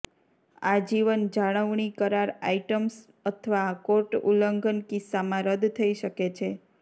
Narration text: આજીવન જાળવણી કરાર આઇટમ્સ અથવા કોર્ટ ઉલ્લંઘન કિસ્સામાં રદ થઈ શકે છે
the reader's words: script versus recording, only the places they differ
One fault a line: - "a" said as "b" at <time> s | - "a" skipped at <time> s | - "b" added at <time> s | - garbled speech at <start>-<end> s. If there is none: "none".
none